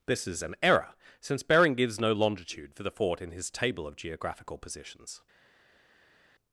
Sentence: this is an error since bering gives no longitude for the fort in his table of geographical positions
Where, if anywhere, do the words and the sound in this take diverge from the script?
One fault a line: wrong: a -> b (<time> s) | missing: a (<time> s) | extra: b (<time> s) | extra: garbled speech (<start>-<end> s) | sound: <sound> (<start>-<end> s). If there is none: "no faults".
no faults